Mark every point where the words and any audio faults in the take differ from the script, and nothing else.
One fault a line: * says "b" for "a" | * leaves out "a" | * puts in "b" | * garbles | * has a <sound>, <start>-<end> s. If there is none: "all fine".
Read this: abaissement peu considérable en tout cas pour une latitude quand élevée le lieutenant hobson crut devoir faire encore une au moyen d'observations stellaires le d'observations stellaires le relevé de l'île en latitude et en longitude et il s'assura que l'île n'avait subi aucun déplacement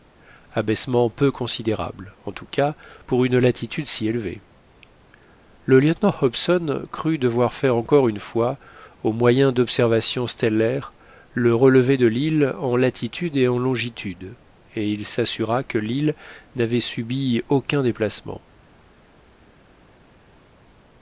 * says "si" for "quand"
* puts in "fois"
* leaves out "d'observations stellaires le"